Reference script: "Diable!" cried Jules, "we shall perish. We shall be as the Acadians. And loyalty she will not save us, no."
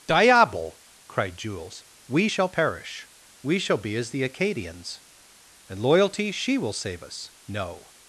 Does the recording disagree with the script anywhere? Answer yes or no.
yes